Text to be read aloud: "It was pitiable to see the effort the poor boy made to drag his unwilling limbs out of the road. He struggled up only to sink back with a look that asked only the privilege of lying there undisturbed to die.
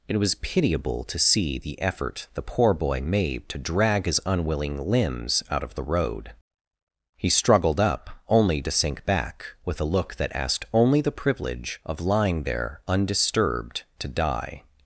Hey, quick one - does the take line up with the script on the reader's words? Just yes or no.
yes